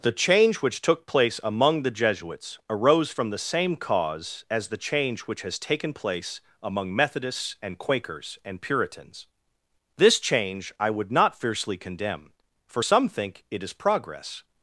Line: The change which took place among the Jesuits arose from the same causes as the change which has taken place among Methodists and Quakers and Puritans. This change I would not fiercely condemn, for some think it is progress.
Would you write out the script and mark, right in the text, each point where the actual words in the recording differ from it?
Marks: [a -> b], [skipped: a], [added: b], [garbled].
The change which took place among the Jesuits arose from the same [causes -> cause] as the change which has taken place among Methodists and Quakers and Puritans. This change I would not fiercely condemn, for some think it is progress.